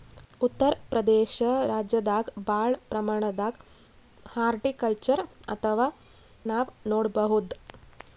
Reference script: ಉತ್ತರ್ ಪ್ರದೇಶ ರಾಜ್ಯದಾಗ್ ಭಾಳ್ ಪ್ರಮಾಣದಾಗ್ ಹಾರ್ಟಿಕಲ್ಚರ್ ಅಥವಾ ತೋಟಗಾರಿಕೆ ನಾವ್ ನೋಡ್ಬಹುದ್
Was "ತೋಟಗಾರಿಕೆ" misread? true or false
true